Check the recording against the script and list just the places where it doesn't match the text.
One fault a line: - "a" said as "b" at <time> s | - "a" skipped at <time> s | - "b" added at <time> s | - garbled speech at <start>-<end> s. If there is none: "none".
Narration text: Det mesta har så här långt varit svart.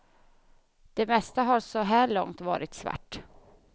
none